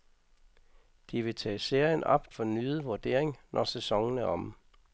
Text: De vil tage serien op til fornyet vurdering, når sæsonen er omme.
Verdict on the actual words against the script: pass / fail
fail